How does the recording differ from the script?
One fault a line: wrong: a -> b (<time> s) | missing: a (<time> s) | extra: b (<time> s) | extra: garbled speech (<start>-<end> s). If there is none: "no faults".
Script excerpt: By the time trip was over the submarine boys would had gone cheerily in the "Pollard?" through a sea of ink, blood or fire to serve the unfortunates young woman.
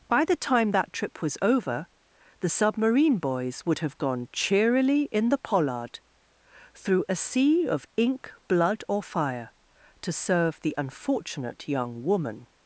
extra: that (0.7 s)
wrong: had -> have (3.8 s)
wrong: unfortunates -> unfortunate (10.8 s)